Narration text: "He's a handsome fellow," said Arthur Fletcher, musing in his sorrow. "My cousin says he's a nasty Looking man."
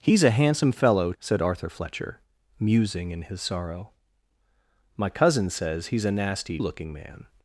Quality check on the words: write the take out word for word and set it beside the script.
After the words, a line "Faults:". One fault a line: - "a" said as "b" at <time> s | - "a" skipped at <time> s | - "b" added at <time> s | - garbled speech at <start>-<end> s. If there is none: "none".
"He's a handsome fellow," said Arthur Fletcher, musing in his sorrow. "My cousin says he's a nasty Looking man."
Faults:
none